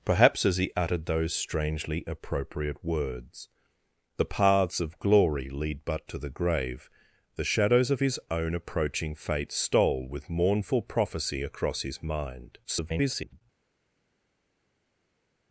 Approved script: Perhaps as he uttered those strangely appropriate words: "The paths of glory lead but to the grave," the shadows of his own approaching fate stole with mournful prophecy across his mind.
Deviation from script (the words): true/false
true